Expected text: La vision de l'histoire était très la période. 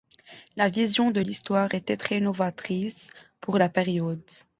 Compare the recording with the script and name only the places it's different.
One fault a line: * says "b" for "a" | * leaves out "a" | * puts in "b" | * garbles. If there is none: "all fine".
* puts in "novatrice pour"